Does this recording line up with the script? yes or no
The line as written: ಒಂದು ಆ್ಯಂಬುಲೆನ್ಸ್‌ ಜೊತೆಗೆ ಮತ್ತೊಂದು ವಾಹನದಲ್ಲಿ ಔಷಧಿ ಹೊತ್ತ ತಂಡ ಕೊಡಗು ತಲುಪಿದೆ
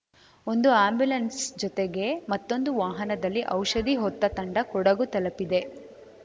yes